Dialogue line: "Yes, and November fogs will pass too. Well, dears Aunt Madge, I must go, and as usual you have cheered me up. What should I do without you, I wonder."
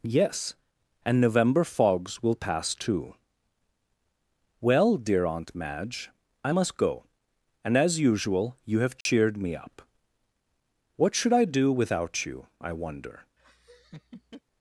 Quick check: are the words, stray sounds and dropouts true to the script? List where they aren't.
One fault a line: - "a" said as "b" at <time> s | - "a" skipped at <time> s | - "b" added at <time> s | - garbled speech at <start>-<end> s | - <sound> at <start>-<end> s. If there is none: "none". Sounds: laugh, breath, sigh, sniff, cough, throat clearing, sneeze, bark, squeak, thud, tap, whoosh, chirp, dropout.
- "dears" said as "dear" at 5.0 s
- dropout at 9.0-9.1 s
- laugh at 13.4-14.4 s